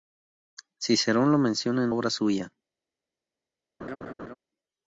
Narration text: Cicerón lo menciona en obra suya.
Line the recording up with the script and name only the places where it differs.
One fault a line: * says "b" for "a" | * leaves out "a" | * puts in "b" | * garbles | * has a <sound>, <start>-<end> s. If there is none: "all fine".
* has a laugh, 3.8-4.3 s